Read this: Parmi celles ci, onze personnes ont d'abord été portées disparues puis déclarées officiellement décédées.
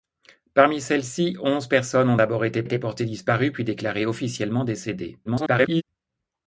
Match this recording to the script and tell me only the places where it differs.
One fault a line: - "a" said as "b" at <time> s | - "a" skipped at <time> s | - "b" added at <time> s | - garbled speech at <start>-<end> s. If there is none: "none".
- "été" added at 2.6 s
- garbled speech at 5.2-5.8 s